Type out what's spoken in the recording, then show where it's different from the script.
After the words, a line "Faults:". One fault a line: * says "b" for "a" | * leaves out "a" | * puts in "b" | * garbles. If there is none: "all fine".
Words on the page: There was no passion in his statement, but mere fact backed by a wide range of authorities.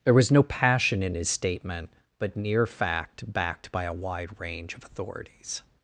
There was no passion in his statement, but near fact backed by a wide range of authorities.
Faults:
* says "near" for "mere"